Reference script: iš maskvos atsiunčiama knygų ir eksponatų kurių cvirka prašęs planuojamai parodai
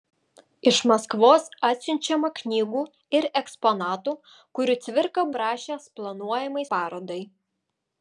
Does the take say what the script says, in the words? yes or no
yes